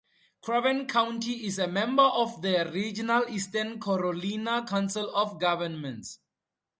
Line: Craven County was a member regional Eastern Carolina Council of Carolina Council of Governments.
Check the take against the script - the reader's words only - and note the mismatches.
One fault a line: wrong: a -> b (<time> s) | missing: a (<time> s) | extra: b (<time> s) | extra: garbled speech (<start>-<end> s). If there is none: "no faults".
wrong: was -> is (1.4 s)
extra: of the (2.0 s)
missing: Carolina Council of (5.4 s)